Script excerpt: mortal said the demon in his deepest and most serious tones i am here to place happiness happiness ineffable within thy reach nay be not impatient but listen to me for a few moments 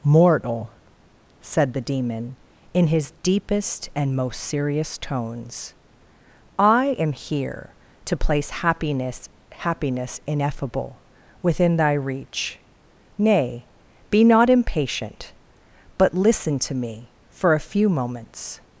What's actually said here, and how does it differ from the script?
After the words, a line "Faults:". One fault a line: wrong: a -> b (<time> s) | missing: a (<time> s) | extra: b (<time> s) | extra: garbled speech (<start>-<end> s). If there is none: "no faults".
mortal said the demon in his deepest and most serious tones i am here to place happiness happiness ineffable within thy reach nay be not impatient but listen to me for a few moments
Faults:
no faults